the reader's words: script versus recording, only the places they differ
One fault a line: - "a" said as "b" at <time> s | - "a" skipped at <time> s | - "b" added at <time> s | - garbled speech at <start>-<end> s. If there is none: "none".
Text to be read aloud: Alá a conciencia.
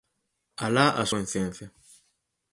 none